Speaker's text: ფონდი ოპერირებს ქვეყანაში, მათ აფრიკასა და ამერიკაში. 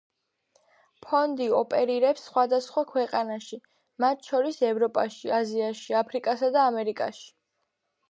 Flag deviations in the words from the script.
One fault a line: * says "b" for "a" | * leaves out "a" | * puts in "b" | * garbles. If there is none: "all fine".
* puts in "სხვადასხვა"
* puts in "შორის ევროპაში აზიაში"